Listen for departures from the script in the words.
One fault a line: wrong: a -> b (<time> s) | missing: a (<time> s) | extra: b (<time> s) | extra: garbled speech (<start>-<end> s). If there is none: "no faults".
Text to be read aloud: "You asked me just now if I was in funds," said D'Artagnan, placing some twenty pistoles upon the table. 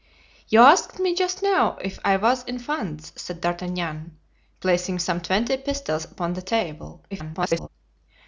extra: garbled speech (7.1-7.7 s)